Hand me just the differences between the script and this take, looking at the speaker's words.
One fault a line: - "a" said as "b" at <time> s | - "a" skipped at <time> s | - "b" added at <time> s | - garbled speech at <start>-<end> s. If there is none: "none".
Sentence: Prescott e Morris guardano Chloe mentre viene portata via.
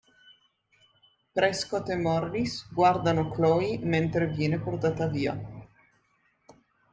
none